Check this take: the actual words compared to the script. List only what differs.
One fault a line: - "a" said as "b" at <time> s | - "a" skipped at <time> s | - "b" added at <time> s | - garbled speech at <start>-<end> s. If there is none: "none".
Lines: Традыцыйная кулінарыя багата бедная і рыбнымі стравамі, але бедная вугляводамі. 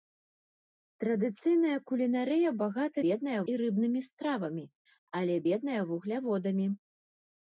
none